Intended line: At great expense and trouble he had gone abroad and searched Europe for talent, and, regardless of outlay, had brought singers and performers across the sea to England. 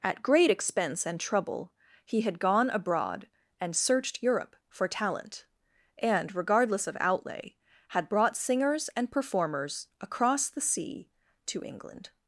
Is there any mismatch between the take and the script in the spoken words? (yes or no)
no